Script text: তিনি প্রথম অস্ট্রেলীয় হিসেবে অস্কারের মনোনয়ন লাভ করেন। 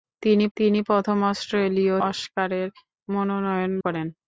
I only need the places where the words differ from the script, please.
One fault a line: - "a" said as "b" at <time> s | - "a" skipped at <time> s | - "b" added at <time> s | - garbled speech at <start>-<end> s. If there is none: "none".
- "তিনি" added at 0.6 s
- "হিসেবে" skipped at 2.0 s
- "লাভ" skipped at 3.7 s